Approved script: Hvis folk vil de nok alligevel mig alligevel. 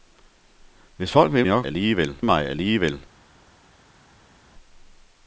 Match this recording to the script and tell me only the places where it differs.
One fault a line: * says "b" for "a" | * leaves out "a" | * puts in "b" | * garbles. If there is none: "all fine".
all fine